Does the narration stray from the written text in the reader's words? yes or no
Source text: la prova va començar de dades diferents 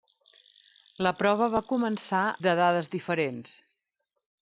no